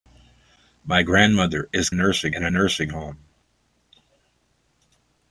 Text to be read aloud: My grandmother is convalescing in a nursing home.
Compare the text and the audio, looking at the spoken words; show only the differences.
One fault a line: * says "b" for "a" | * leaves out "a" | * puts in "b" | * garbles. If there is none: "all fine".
* says "nursing" for "convalescing"